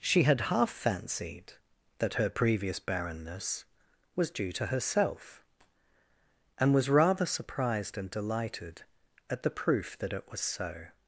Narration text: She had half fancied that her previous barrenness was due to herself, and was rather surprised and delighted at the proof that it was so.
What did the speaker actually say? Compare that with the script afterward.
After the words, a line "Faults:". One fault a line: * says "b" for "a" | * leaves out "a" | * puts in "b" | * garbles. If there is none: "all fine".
She had half fancied that her previous barrenness was due to herself, and was rather surprised and delighted at the proof that it was so.
Faults:
all fine